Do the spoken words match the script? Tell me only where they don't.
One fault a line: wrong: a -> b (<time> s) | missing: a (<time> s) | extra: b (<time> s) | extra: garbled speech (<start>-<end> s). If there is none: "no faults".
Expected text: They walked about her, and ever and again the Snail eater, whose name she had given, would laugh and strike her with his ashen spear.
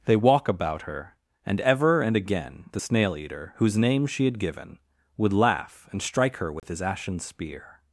wrong: walked -> walk (0.1 s)